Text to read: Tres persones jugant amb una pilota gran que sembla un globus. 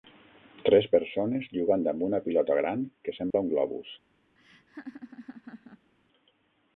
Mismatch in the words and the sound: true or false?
true